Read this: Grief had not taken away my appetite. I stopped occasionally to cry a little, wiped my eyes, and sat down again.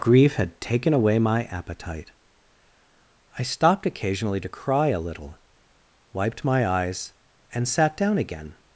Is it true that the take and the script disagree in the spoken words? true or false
true